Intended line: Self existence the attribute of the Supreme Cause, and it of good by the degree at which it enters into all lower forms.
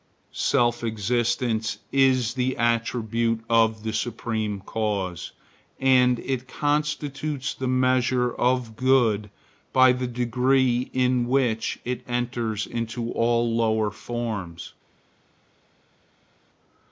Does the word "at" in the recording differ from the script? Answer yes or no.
yes